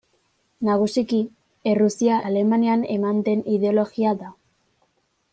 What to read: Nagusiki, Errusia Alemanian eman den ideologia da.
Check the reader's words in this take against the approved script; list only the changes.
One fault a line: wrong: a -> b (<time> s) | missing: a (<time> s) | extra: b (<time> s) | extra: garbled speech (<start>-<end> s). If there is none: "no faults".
no faults